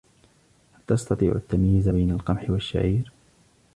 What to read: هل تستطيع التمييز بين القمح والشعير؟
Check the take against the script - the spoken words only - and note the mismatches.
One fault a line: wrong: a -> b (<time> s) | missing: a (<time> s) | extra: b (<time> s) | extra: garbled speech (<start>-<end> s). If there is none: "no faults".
no faults